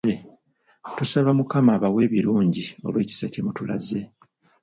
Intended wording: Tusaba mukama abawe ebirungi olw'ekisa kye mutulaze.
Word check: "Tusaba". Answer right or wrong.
right